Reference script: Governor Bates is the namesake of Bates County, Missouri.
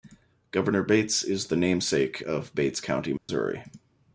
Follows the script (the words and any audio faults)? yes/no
no